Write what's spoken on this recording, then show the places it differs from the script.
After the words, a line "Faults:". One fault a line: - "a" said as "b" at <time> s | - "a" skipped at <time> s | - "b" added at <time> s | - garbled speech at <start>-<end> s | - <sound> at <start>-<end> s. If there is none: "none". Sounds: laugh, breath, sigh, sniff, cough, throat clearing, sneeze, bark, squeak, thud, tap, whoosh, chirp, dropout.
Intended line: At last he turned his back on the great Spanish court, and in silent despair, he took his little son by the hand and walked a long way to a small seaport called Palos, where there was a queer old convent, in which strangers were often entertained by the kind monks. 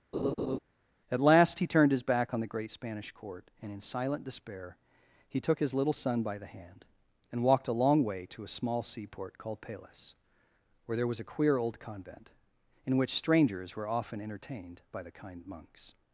At last he turned his back on the great Spanish court, and in silent despair, he took his little son by the hand and walked a long way to a small seaport called Palos, where there was a queer old convent, in which strangers were often entertained by the kind monks.
Faults:
- laugh at 0.1-0.6 s